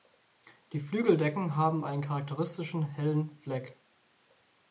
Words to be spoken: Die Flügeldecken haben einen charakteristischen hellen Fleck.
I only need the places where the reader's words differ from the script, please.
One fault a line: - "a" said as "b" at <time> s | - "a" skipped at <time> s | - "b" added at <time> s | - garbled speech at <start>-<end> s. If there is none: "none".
none